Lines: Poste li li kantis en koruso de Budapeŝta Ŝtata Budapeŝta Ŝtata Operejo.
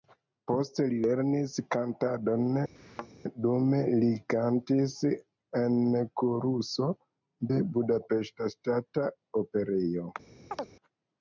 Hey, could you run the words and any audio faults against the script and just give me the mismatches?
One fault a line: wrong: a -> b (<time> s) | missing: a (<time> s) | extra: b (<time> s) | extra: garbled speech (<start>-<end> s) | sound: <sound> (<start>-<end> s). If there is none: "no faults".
extra: lernis kantadon dume (1.0 s)
sound: thud (2.8-3.1 s)
missing: Budapeŝta Ŝtata (9.1 s)
sound: chirp (10.5-10.7 s)